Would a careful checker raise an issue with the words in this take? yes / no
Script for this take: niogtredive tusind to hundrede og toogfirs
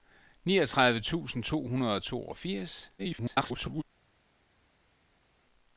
yes